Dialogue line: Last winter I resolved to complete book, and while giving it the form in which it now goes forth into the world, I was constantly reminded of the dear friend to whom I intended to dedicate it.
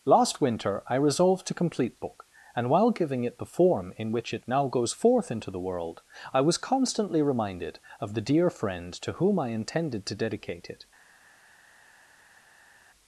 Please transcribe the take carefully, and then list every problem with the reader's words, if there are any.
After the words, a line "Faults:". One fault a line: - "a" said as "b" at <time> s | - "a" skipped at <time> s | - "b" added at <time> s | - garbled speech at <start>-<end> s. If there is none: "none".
Last winter I resolved to complete book, and while giving it the form in which it now goes forth into the world, I was constantly reminded of the dear friend to whom I intended to dedicate it.
Faults:
none